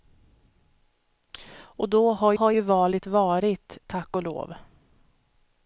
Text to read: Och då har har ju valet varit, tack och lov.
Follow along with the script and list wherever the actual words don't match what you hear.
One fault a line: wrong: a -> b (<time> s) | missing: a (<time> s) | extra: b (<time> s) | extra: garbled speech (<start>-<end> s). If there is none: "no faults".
no faults